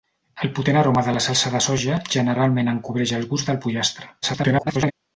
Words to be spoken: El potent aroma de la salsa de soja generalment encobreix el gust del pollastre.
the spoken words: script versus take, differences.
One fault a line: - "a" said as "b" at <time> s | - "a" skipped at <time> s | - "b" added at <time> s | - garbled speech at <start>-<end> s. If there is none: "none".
- garbled speech at 4.2-4.9 s